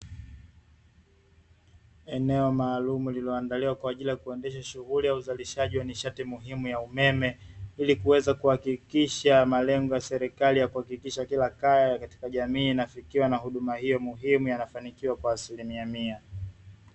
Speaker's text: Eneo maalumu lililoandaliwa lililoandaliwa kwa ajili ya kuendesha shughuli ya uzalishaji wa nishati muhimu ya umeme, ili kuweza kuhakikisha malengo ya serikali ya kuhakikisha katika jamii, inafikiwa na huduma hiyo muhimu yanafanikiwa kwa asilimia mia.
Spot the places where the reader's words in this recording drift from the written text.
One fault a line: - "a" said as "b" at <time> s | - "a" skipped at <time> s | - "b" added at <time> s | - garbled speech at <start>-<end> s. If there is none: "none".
- "lililoandaliwa" skipped at 3.8 s
- "kila kaya" added at 11.2 s